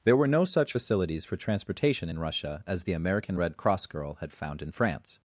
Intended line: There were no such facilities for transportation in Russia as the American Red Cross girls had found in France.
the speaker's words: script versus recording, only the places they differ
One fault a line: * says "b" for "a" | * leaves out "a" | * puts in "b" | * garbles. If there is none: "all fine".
* says "girl" for "girls"